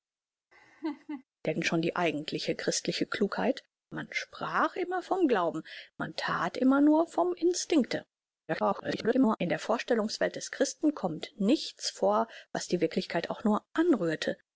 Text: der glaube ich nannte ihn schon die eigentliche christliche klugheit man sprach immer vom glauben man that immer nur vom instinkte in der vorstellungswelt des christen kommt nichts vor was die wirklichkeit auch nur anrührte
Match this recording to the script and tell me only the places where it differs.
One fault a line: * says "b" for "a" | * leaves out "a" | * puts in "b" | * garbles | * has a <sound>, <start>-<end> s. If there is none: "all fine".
* has a laugh, 0.5-1.2 s
* leaves out "glaube ich nannte"
* garbles